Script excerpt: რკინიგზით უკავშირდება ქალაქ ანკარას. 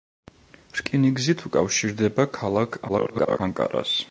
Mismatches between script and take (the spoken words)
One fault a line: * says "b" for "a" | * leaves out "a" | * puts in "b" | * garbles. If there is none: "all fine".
* garbles